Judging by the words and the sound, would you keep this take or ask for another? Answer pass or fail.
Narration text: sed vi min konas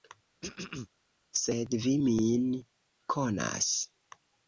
fail